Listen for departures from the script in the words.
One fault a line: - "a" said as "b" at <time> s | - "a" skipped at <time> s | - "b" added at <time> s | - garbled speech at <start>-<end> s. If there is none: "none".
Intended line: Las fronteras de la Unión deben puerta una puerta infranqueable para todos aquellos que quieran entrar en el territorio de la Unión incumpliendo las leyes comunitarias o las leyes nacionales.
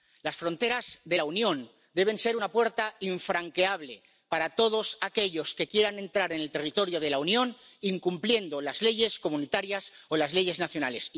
- "puerta" said as "ser" at 2.2 s